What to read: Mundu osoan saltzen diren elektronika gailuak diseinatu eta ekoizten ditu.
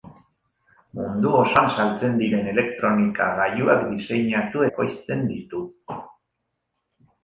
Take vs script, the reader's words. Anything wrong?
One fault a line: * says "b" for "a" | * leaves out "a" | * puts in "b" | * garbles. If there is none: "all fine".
* leaves out "eta"